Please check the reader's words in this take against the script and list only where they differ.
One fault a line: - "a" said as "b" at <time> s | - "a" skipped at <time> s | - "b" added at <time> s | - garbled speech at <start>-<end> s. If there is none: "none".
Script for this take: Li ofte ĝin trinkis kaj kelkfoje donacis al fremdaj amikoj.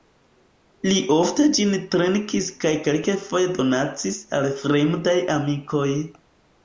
none